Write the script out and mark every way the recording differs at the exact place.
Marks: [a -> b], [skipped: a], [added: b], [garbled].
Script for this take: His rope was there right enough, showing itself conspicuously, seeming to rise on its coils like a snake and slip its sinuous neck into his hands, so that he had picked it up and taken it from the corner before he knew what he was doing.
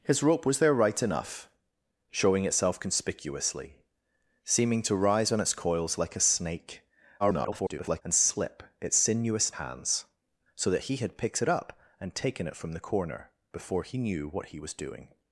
His rope was there right enough, showing itself conspicuously, seeming to rise on its coils like a snake [garbled] and slip its sinuous [skipped: neck into his] hands, so that he had picked it up and taken it from the corner before he knew what he was doing.